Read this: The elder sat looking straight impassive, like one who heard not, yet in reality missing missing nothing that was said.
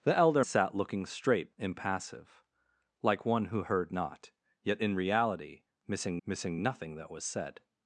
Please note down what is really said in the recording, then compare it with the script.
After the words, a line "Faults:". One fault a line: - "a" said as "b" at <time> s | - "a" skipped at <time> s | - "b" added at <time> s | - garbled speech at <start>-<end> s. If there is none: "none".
The elder sat looking straight impassive, like one who heard not, yet in reality missing missing nothing that was said.
Faults:
none